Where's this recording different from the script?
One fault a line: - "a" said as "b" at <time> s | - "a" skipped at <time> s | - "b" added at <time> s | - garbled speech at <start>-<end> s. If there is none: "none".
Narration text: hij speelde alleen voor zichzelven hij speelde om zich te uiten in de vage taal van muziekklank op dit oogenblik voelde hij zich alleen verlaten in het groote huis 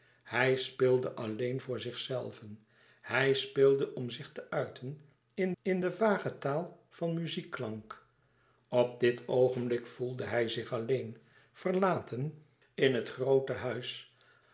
- "in" added at 5.6 s